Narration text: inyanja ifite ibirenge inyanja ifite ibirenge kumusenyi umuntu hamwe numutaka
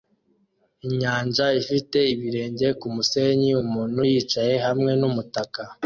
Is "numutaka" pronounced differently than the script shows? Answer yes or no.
no